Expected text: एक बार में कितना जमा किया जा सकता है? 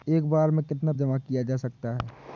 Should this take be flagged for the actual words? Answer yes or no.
no